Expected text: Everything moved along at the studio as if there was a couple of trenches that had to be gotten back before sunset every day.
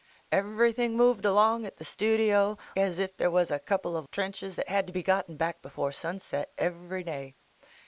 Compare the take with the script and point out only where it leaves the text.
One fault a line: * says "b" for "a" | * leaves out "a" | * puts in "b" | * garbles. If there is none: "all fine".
all fine